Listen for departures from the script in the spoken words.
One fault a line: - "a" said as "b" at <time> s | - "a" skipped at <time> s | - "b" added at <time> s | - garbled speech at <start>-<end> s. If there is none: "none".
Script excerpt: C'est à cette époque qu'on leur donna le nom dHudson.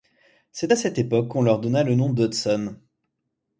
none